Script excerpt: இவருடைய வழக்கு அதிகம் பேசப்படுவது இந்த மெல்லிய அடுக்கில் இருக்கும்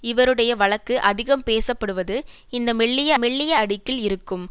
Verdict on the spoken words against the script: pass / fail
fail